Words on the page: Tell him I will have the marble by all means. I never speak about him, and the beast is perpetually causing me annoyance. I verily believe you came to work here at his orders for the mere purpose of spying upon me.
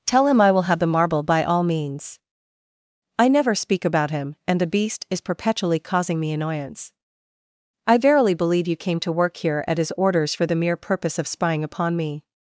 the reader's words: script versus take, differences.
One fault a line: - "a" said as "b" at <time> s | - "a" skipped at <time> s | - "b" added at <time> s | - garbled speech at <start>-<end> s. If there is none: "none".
none